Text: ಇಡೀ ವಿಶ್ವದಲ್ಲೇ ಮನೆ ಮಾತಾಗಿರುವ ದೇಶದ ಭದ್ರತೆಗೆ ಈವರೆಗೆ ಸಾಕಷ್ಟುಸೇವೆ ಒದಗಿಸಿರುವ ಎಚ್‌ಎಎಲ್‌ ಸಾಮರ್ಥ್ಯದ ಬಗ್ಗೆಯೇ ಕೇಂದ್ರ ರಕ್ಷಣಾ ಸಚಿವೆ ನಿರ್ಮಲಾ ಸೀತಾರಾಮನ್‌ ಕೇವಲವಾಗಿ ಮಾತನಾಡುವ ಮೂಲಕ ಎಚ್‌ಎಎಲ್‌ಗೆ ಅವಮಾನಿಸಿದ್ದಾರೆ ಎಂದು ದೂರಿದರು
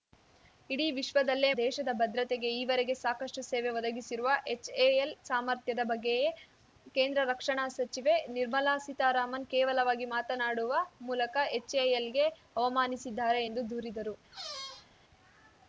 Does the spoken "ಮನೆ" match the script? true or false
false